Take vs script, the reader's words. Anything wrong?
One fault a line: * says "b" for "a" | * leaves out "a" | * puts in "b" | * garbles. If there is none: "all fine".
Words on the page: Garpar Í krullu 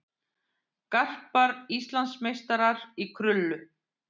* puts in "Íslandsmeistarar"